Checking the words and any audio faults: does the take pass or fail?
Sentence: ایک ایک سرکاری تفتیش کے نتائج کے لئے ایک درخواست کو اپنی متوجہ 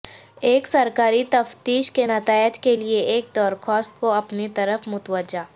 fail